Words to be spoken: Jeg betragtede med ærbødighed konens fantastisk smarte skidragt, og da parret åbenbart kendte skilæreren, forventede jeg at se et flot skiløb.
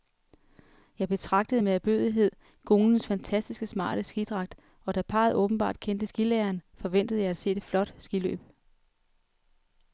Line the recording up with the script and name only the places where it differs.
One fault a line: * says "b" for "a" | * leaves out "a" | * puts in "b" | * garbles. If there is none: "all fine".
all fine